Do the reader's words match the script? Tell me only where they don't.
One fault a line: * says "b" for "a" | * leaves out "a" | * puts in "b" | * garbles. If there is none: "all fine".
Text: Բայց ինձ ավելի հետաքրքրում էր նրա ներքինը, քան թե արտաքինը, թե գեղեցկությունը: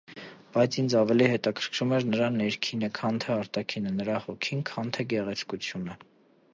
* puts in "նրա հոգին քան"